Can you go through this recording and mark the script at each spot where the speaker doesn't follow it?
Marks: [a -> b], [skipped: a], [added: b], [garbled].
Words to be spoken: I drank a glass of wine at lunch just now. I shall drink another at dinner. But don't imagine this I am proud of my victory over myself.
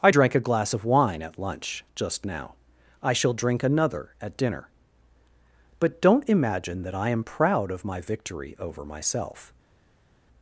I drank a glass of wine at lunch just now. I shall drink another at dinner. But don't imagine [this -> that] I am proud of my victory over myself.